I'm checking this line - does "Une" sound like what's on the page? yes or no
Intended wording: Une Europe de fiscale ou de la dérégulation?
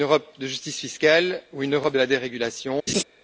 yes